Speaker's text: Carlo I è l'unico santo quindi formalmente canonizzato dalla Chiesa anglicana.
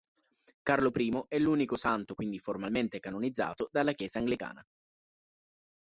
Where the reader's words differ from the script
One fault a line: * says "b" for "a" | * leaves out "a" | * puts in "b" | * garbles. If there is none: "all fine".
all fine